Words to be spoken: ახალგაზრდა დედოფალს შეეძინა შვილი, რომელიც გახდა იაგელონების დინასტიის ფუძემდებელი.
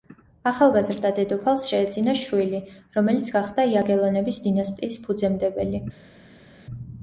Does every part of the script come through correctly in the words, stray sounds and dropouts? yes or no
yes